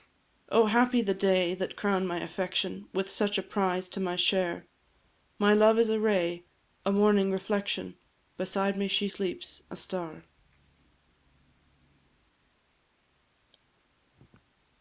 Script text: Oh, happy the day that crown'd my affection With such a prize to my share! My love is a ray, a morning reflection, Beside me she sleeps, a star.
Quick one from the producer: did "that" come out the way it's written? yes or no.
yes